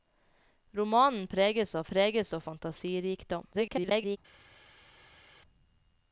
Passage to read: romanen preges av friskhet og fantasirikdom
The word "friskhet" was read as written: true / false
false